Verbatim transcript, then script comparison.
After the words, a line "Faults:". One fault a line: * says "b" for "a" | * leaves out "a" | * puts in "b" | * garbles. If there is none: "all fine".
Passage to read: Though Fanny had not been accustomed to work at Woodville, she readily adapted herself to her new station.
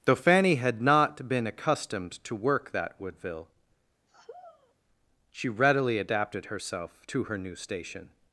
Though Fanny had not been accustomed to work that Woodville, she readily adapted herself to her new station.
Faults:
* says "that" for "at"